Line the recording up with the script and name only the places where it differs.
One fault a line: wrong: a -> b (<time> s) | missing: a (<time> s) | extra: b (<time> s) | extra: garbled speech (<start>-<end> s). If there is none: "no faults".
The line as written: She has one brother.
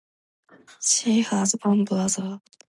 no faults